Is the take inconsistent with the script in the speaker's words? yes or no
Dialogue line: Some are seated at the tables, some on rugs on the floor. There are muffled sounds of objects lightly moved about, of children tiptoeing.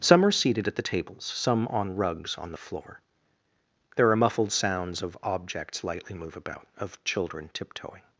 yes